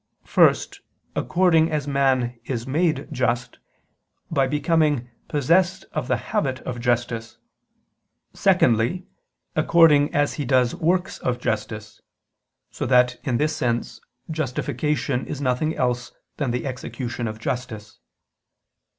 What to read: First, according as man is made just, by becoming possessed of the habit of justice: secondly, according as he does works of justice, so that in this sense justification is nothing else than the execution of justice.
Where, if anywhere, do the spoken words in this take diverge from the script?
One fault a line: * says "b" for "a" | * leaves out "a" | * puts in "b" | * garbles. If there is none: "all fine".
all fine